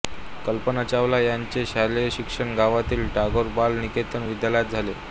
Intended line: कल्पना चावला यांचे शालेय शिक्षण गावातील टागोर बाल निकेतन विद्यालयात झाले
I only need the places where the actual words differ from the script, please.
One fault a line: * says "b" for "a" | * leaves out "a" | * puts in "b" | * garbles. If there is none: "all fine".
all fine